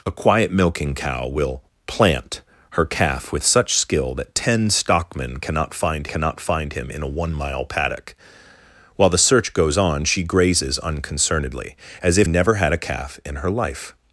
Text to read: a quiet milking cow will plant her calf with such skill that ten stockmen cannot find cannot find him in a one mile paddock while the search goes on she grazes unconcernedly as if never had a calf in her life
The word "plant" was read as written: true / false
true